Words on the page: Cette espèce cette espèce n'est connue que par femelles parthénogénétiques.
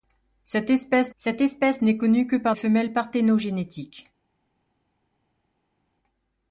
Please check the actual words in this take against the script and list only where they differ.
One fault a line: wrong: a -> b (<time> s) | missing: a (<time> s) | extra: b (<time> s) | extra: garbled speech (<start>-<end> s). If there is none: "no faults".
no faults